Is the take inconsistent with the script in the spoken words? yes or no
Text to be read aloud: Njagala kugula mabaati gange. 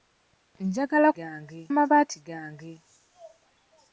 yes